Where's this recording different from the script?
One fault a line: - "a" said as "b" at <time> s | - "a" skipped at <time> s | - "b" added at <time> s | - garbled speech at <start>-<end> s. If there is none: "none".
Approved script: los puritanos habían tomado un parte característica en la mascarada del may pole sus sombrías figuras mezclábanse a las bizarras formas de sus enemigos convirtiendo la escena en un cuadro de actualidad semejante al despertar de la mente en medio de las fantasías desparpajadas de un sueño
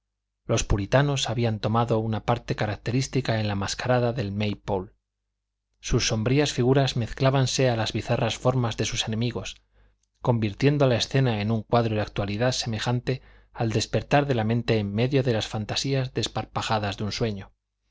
- "un" said as "una" at 2.0 s